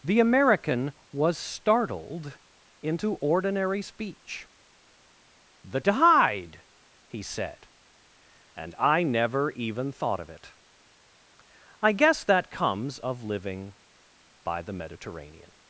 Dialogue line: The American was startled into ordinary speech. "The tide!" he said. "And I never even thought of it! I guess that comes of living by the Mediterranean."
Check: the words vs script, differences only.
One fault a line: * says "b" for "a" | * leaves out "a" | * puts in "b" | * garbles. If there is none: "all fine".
all fine